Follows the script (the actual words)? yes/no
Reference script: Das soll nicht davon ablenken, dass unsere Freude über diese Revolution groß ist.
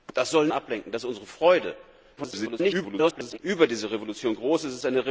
no